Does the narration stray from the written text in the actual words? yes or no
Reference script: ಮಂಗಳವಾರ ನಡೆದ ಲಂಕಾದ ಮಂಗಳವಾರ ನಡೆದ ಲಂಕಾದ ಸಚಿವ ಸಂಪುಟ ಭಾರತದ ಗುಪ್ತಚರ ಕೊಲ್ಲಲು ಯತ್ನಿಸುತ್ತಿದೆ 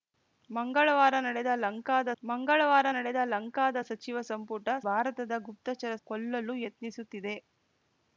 no